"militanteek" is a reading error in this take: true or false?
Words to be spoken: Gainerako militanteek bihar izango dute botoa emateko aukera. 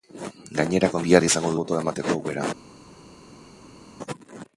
true